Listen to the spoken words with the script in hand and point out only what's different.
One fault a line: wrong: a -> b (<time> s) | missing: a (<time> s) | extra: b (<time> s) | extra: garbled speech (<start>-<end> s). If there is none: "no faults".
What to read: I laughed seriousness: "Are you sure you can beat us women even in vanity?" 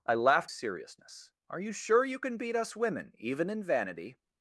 no faults